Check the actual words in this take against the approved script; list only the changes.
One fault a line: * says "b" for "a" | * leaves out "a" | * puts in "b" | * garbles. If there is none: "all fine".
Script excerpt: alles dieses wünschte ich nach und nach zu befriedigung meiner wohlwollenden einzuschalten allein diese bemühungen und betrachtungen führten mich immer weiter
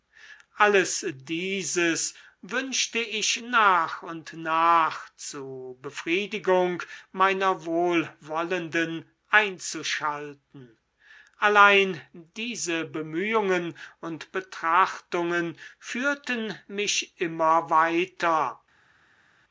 all fine